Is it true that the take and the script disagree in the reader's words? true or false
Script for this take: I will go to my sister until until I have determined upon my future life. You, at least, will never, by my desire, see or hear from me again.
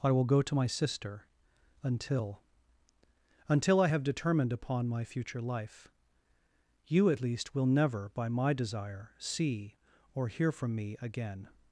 false